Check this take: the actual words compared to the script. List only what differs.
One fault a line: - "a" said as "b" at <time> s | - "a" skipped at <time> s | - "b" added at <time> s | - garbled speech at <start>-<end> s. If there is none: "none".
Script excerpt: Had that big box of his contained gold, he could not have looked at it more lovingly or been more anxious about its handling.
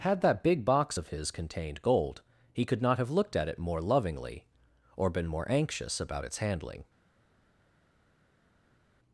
none